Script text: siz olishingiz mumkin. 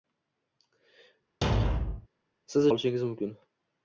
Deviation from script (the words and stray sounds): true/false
true